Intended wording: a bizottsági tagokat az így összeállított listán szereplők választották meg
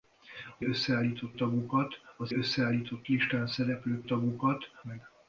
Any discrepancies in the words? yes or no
yes